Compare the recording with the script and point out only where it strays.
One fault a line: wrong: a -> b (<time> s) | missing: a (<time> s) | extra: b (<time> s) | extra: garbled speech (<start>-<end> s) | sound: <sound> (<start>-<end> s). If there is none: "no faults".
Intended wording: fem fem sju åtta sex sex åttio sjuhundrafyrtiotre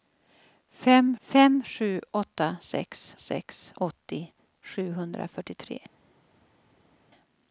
no faults